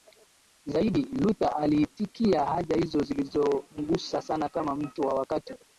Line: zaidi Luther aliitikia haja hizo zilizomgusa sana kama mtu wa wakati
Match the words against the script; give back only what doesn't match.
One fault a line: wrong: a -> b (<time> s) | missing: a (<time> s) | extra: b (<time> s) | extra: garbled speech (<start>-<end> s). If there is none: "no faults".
no faults